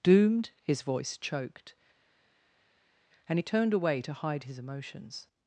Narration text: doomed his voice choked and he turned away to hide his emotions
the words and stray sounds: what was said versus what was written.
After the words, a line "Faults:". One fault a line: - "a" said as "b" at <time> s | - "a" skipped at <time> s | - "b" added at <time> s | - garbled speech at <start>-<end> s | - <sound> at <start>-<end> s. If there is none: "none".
doomed his voice choked and he turned away to hide his emotions
Faults:
none